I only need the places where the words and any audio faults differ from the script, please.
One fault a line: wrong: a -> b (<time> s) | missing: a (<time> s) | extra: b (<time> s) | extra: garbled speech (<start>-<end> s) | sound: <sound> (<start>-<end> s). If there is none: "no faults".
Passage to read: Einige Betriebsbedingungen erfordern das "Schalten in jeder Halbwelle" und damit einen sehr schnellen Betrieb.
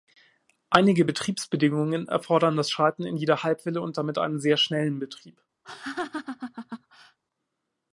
sound: laugh (5.6-7.2 s)